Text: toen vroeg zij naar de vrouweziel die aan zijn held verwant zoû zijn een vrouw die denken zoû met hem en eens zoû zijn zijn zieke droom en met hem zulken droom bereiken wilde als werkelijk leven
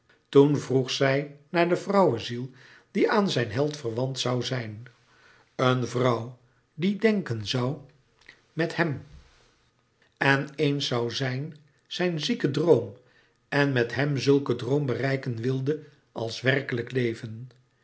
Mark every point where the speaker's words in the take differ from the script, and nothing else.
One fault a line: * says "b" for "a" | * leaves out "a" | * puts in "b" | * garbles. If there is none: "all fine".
all fine